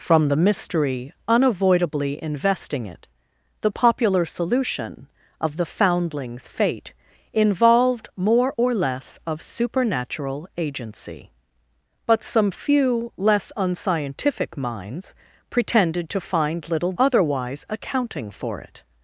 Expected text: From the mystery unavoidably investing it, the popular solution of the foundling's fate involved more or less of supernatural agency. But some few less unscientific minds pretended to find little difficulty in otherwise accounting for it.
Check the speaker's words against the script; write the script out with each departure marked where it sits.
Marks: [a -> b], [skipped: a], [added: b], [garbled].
From the mystery unavoidably investing it, the popular solution of the foundling's fate involved more or less of supernatural agency. But some few less unscientific minds pretended to find little [skipped: difficulty in] otherwise accounting for it.